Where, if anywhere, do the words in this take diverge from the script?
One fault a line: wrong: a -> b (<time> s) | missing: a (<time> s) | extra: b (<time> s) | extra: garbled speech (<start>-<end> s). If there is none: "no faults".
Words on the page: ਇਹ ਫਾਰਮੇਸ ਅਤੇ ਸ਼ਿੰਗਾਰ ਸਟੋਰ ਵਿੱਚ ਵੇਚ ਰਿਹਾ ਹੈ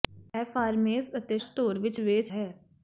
missing: ਸ਼ਿੰਗਾਰ (1.4 s)
missing: ਰਿਹਾ (2.3 s)